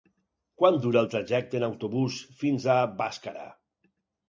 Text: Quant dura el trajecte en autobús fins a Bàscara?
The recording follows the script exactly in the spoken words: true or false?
true